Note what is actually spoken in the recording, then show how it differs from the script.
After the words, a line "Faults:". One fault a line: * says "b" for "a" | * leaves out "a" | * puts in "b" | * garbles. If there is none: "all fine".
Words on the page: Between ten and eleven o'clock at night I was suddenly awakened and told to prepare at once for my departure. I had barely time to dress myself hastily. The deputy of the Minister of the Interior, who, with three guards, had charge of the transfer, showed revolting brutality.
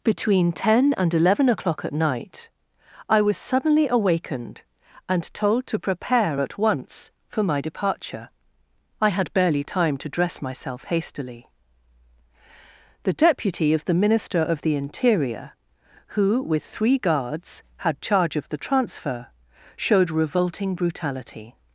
Between ten and eleven o'clock at night I was suddenly awakened and told to prepare at once for my departure. I had barely time to dress myself hastily. The deputy of the Minister of the Interior, who, with three guards, had charge of the transfer, showed revolting brutality.
Faults:
all fine